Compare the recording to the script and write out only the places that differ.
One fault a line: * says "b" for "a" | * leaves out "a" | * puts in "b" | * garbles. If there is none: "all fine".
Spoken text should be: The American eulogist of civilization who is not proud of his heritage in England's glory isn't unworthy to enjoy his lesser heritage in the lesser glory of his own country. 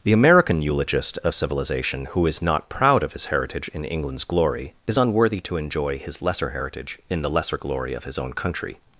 * says "is" for "isn't"